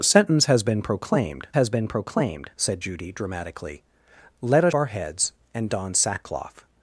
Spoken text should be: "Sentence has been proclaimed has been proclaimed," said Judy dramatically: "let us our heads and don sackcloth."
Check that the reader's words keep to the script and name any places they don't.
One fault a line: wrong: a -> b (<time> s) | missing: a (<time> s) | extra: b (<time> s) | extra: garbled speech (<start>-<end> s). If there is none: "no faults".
no faults